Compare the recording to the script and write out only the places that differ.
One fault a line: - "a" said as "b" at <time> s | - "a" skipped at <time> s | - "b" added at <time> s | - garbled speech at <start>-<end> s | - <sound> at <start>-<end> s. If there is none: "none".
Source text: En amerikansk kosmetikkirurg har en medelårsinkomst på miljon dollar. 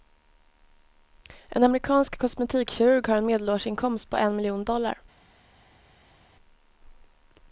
- "en" added at 4.2 s